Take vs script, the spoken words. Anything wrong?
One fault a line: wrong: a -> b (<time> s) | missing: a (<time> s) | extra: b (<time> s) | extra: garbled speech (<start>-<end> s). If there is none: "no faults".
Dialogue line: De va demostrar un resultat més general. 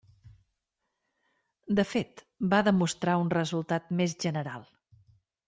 extra: fet (1.9 s)